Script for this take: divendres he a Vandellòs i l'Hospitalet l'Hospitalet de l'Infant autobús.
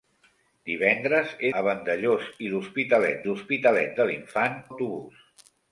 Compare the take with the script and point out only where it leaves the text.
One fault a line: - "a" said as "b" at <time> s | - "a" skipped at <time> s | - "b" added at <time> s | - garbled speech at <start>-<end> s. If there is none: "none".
none